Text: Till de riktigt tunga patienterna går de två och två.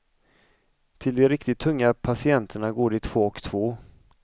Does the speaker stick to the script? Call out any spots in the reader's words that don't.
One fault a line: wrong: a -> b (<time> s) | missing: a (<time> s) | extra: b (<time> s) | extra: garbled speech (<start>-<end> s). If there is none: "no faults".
no faults